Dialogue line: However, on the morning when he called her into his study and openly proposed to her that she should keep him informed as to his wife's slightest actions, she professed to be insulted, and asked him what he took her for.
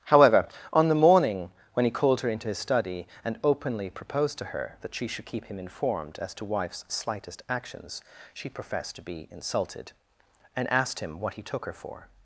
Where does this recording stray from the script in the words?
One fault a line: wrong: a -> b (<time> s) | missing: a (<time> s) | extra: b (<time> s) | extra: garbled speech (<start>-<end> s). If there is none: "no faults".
missing: his (6.5 s)